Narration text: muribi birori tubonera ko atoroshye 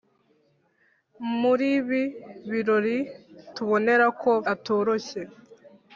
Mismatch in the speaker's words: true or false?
false